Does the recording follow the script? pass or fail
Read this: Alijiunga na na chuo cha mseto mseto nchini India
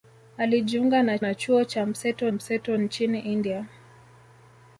pass